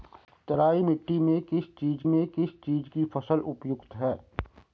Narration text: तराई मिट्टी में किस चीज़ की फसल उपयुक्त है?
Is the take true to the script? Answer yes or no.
no